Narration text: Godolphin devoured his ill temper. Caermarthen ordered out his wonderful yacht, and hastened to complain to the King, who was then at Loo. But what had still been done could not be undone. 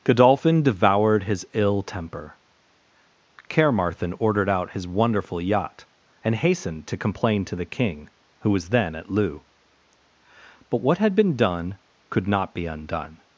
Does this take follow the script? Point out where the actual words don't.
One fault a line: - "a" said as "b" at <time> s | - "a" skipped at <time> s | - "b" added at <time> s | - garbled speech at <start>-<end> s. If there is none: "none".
- "still" skipped at 11.1 s